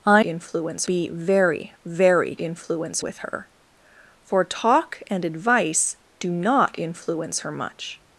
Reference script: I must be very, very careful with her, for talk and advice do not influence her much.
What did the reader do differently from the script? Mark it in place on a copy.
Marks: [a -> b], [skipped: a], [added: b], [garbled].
I [must -> influence] be very, very [careful -> influence] with her, for talk and advice do not influence her much.